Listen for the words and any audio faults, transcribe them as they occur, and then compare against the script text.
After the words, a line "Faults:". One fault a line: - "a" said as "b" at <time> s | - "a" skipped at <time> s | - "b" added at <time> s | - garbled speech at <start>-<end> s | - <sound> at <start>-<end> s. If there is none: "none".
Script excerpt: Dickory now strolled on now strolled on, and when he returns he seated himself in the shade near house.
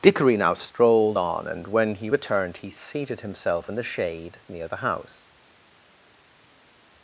Dickory now strolled on, and when he returned he seated himself in the shade near the house.
Faults:
- "now strolled on" skipped at 1.5 s
- "returns" said as "returned" at 2.1 s
- "the" added at 4.7 s